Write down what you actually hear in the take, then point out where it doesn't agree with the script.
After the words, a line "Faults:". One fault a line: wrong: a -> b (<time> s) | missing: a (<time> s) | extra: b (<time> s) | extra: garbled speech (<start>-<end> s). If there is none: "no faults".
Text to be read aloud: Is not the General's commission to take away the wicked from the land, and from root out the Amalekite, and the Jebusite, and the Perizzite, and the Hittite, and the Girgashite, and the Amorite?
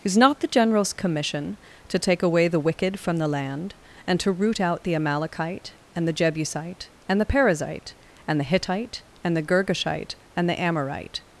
Is not the General's commission to take away the wicked from the land, and to root out the Amalekite, and the Jebusite, and the Perizzite, and the Hittite, and the Girgashite, and the Amorite?
Faults:
wrong: from -> to (4.2 s)